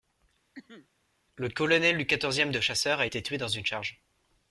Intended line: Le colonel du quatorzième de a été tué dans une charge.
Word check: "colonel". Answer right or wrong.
right